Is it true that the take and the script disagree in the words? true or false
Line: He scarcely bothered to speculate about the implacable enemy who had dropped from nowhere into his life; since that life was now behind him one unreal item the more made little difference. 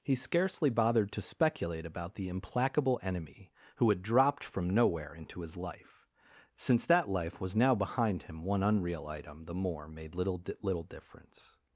true